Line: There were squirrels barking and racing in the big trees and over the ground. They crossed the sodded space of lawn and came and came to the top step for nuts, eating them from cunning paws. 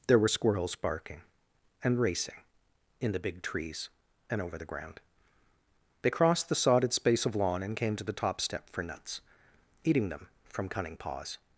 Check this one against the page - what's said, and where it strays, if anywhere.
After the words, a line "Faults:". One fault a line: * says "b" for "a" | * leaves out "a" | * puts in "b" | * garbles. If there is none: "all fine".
There were squirrels barking and racing in the big trees and over the ground. They crossed the sodded space of lawn and came to the top step for nuts, eating them from cunning paws.
Faults:
* leaves out "and came"